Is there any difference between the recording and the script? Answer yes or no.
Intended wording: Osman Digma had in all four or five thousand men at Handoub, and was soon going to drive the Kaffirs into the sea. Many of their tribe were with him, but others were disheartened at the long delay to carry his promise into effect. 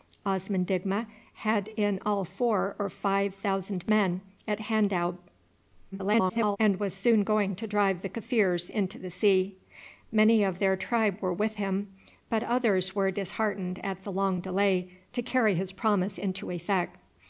yes